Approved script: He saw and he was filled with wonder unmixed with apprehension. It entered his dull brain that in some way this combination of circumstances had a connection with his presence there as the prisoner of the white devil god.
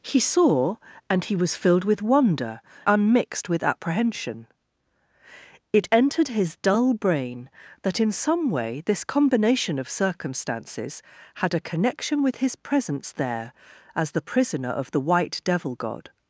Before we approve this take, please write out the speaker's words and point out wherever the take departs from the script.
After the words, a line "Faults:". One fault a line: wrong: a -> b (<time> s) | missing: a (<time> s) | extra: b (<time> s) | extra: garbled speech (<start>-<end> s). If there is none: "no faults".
He saw and he was filled with wonder unmixed with apprehension. It entered his dull brain that in some way this combination of circumstances had a connection with his presence there as the prisoner of the white devil god.
Faults:
no faults